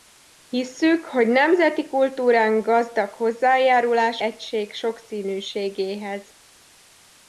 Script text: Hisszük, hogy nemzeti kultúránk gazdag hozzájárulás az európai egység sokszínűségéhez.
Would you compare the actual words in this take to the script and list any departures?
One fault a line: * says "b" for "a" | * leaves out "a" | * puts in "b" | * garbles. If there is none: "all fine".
* leaves out "az európai"